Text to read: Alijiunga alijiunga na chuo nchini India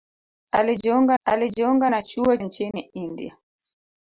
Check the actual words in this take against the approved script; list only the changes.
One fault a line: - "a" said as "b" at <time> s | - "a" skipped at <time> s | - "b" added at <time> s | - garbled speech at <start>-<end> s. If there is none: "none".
none